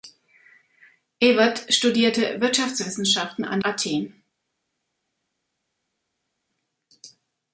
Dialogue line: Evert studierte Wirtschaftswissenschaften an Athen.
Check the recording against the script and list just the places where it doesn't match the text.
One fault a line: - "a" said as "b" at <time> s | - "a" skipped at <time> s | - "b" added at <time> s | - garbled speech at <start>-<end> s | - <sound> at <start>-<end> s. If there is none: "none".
none